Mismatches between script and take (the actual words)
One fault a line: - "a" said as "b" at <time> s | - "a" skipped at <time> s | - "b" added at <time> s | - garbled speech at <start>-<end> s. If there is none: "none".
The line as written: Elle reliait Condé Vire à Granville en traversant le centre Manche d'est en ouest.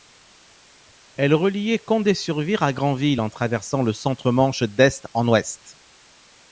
- "sur" added at 2.1 s